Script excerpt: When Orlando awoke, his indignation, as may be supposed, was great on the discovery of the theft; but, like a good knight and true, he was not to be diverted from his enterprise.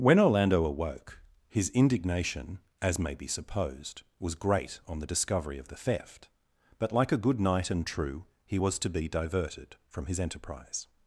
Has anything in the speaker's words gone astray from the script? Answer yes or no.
yes